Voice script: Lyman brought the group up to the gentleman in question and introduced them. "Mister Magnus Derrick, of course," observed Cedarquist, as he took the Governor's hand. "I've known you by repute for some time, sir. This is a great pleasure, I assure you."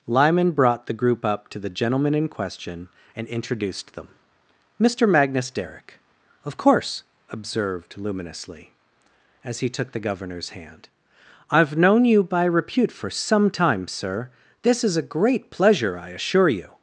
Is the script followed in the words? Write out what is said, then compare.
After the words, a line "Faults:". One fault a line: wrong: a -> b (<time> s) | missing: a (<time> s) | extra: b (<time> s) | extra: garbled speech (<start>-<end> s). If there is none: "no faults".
Lyman brought the group up to the gentleman in question and introduced them. "Mister Magnus Derrick, of course," observed Luminously, as he took the Governor's hand. "I've known you by repute for some time, sir. This is a great pleasure, I assure you."
Faults:
wrong: Cedarquist -> Luminously (8.0 s)